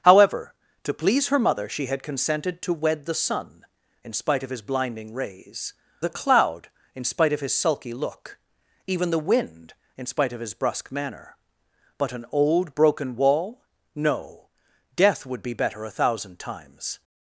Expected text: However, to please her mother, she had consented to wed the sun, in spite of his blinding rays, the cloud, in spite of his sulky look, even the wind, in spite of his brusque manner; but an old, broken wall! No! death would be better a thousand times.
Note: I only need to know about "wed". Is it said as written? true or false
true